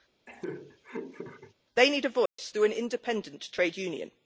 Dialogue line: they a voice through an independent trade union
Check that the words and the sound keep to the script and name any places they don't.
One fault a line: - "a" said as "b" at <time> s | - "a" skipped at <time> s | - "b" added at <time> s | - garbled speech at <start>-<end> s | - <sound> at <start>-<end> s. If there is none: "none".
- laugh at 0.3-1.5 s
- "need" added at 1.9 s
- dropout at 2.3-2.4 s